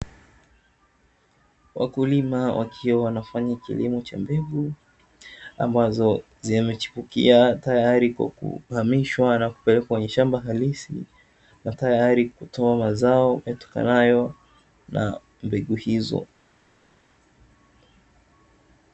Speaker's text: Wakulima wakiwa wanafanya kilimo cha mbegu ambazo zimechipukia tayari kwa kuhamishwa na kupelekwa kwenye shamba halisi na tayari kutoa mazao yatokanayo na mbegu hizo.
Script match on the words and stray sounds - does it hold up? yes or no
yes